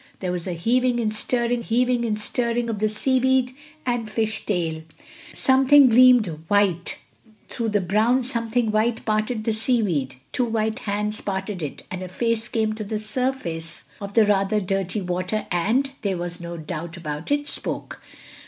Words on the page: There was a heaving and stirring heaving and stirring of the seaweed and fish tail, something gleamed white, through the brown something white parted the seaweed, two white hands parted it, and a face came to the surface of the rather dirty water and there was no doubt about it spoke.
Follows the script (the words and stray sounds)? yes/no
yes